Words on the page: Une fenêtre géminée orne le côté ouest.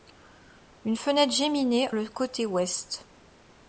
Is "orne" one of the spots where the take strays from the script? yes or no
yes